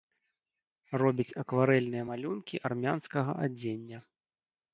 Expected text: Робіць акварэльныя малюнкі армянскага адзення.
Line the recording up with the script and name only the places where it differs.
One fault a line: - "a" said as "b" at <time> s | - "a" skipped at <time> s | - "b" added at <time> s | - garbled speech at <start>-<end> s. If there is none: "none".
none